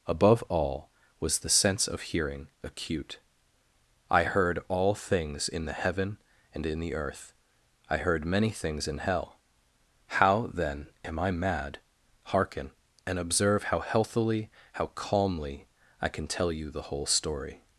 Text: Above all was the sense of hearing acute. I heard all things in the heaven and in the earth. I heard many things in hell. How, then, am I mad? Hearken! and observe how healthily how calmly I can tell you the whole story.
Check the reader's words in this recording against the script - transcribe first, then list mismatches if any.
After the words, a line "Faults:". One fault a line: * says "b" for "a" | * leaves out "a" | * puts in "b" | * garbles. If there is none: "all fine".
Above all was the sense of hearing acute. I heard all things in the heaven and in the earth. I heard many things in hell. How, then, am I mad? Hearken! and observe how healthily how calmly I can tell you the whole story.
Faults:
all fine